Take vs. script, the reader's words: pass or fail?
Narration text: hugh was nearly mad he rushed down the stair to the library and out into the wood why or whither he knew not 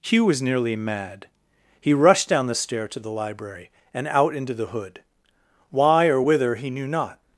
fail